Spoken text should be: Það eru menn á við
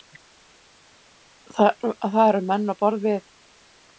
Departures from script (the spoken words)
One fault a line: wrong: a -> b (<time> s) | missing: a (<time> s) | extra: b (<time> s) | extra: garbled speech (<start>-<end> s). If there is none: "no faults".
extra: borð (2.8 s)